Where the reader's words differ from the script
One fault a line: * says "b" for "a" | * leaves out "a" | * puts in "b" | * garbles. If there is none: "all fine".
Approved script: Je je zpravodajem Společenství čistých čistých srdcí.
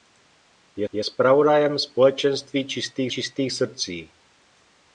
all fine